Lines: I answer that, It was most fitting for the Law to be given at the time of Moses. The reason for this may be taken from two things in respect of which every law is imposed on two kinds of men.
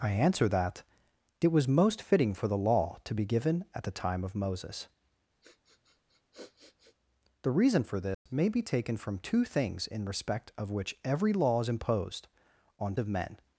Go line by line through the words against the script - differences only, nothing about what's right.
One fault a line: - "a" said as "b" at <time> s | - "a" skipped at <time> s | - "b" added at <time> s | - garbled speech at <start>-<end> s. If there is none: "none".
- "two kinds" skipped at 13.0 s